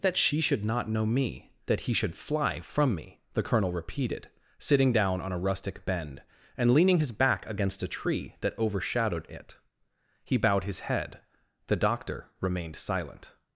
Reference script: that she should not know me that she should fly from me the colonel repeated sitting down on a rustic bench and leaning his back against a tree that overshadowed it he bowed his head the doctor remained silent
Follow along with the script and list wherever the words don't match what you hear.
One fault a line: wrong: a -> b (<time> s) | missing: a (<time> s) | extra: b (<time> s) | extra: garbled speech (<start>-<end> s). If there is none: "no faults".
wrong: she -> he (1.8 s)
wrong: bench -> bend (5.8 s)